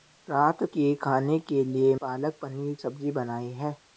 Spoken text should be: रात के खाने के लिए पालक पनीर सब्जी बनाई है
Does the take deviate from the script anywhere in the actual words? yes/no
no